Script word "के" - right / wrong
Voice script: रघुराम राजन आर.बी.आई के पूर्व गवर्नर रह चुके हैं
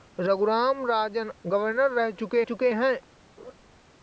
wrong